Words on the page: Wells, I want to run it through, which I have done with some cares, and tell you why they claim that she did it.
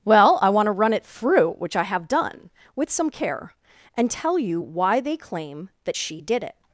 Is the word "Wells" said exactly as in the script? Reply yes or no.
no